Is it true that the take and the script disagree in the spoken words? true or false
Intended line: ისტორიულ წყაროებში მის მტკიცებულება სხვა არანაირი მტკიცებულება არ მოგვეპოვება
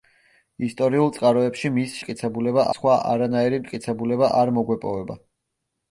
false